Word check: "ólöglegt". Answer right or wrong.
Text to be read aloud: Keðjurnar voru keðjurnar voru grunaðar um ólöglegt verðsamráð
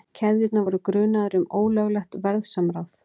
right